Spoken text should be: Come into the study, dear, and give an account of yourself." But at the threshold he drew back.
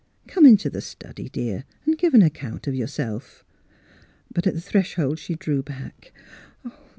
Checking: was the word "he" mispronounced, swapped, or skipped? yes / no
yes